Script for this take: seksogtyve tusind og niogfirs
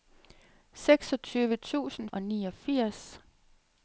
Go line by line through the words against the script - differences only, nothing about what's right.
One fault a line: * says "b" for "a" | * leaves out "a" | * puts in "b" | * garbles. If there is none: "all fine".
all fine